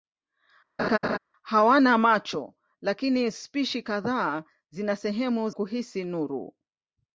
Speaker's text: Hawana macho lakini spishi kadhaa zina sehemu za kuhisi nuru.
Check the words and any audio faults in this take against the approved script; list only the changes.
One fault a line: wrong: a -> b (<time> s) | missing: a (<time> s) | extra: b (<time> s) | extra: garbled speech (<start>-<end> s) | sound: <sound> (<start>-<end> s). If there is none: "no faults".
sound: laugh (0.8-1.2 s)
missing: za (5.5 s)